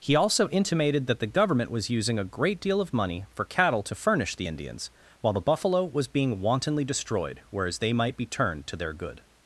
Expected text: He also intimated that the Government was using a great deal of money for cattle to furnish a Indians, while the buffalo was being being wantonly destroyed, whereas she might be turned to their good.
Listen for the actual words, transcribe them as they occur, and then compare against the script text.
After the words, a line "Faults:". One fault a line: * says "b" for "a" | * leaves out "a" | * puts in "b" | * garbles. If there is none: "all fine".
He also intimated that the Government was using a great deal of money for cattle to furnish the Indians, while the buffalo was being wantonly destroyed, whereas they might be turned to their good.
Faults:
* says "the" for "a"
* leaves out "being"
* says "they" for "she"